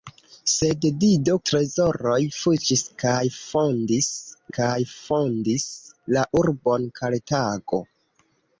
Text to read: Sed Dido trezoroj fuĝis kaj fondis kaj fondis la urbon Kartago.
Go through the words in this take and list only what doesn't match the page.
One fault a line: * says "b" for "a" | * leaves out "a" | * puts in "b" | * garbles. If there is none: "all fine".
all fine